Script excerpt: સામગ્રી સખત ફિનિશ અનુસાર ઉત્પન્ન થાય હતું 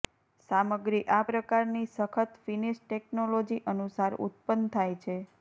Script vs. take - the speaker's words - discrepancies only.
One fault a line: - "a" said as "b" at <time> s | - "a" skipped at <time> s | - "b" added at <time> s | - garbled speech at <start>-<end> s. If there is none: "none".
- "આ પ્રકારની" added at 1.1 s
- "ટેકનોલોજી" added at 2.8 s
- "હતું" said as "છે" at 5.0 s